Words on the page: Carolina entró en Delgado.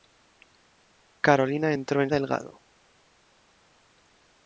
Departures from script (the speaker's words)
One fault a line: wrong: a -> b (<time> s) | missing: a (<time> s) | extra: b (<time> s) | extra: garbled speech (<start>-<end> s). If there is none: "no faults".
no faults